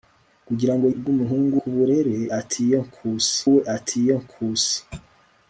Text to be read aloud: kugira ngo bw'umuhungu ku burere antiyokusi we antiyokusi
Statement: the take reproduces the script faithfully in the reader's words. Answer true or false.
true